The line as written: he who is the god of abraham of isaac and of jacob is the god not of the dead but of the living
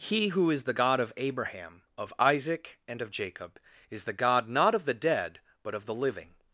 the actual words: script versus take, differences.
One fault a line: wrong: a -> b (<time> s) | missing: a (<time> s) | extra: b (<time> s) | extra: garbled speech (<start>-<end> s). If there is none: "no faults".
no faults